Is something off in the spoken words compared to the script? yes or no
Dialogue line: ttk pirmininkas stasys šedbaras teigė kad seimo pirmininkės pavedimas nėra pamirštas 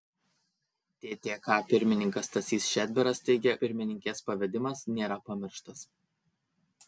yes